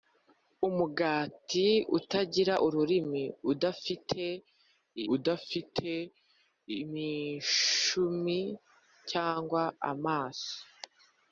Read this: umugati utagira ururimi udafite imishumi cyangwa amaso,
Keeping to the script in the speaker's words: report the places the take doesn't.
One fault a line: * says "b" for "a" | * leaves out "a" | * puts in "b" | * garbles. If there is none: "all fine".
* puts in "udafite"